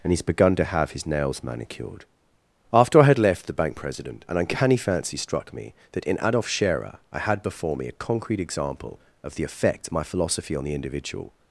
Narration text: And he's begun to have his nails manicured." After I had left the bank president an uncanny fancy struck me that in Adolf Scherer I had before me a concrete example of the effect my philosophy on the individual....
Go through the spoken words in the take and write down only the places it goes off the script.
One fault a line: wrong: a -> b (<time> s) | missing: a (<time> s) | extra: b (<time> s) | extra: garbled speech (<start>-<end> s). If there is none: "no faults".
no faults